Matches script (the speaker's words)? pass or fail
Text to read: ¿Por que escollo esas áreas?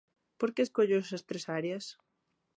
fail